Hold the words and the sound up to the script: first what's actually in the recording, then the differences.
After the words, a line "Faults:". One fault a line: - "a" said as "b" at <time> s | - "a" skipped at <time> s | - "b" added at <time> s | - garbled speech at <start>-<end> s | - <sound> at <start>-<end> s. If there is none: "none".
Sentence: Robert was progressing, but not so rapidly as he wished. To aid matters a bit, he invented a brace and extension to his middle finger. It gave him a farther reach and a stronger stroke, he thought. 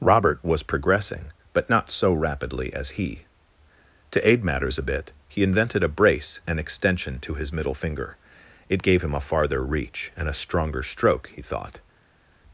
Robert was progressing, but not so rapidly as he. To aid matters a bit, he invented a brace and extension to his middle finger. It gave him a farther reach and a stronger stroke, he thought.
Faults:
- "wished" skipped at 3.2 s